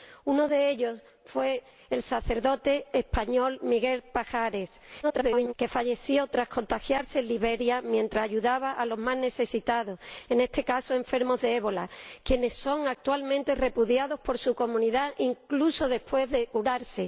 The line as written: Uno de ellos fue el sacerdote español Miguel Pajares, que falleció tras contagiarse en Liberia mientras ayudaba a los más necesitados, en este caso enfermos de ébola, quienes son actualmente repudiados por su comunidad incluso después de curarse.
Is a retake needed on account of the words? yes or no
yes